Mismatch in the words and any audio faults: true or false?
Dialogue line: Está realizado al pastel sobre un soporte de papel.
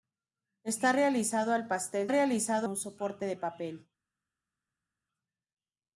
true